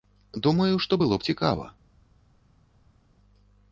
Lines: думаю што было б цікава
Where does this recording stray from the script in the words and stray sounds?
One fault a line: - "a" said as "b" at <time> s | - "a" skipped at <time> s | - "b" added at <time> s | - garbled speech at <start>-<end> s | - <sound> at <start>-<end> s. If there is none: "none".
none